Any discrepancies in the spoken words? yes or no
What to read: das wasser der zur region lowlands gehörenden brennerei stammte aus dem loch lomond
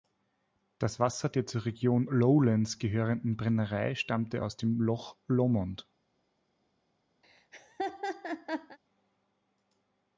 no